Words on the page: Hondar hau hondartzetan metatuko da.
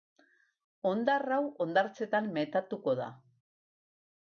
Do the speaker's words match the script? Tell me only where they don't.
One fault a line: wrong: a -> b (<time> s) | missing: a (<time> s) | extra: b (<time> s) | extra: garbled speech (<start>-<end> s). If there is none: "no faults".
no faults